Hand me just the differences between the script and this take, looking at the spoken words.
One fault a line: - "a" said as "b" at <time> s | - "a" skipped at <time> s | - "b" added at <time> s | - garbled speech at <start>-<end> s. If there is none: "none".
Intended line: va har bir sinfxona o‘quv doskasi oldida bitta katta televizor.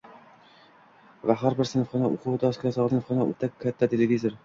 - "oldida" said as "sinfxona" at 2.9 s